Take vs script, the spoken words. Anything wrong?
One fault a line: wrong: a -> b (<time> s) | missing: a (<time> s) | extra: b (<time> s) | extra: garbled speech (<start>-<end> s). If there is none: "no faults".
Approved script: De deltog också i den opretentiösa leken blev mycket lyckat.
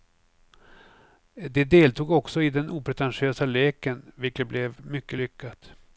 extra: vilket (4.2 s)